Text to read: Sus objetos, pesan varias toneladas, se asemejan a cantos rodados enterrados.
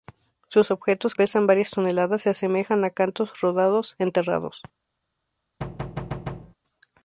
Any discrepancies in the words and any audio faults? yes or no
yes